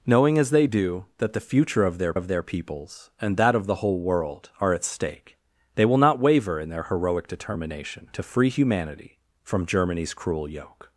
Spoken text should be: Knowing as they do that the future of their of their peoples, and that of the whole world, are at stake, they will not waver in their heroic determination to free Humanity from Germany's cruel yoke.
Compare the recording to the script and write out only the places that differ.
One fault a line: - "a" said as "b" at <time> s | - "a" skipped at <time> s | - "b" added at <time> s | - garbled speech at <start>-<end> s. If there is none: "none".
none